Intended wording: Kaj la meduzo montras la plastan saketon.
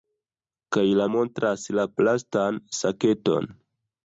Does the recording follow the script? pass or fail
fail